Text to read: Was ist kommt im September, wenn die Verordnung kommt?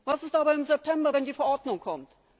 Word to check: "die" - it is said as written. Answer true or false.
true